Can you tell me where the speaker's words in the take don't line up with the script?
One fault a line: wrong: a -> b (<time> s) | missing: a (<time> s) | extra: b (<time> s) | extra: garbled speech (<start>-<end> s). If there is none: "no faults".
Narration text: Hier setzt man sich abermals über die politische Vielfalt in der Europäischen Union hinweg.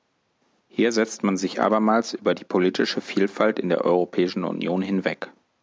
no faults